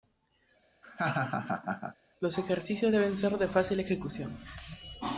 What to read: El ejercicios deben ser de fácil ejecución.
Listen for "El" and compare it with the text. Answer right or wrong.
wrong